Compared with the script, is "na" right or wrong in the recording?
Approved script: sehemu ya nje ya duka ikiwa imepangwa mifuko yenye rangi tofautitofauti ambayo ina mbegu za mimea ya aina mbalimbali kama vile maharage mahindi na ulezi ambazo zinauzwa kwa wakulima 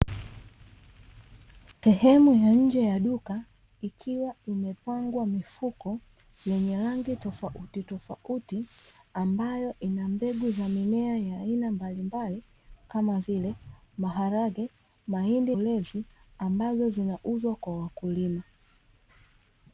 wrong